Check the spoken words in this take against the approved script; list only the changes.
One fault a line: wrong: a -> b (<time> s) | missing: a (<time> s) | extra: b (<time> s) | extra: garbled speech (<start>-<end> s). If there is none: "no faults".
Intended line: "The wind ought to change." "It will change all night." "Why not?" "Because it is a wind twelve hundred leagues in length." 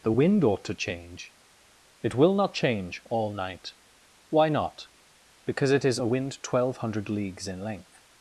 extra: not (2.3 s)